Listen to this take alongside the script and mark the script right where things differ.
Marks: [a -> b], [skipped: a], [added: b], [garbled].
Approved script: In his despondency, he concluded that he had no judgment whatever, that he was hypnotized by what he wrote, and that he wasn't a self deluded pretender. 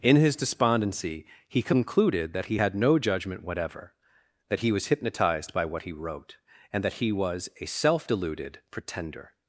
In his despondency, he concluded that he had no judgment whatever, that he was hypnotized by what he wrote, and that he [wasn't -> was] a self deluded pretender.